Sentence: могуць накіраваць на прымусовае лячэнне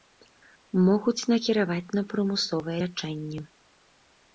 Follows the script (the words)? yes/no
yes